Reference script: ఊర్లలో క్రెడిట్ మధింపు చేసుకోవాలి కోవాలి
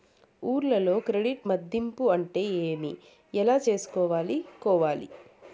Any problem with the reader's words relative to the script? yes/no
yes